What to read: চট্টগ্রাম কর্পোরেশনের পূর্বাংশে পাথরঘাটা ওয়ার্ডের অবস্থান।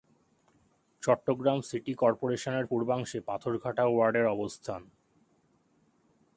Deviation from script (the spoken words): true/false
true